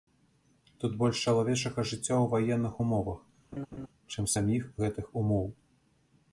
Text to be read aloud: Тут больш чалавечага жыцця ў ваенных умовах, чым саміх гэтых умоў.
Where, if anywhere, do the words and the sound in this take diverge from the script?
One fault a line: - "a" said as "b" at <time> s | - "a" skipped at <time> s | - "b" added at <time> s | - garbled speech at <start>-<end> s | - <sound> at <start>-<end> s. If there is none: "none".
- laugh at 3.5-3.9 s